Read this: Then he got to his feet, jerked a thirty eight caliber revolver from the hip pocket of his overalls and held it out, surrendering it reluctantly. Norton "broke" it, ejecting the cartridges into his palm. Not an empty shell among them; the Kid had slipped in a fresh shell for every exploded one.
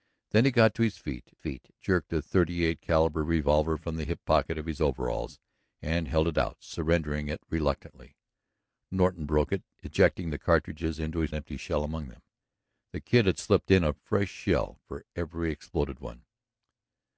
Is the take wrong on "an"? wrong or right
wrong